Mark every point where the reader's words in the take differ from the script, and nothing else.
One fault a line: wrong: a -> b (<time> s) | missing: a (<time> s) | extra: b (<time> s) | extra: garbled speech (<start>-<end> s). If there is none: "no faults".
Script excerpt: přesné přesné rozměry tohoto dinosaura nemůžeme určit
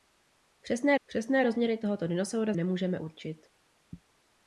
no faults